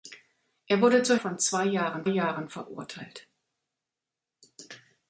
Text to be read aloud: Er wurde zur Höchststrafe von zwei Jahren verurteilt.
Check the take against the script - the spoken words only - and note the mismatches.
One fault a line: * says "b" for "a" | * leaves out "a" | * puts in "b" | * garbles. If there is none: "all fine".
* leaves out "Höchststrafe"
* puts in "Jahren"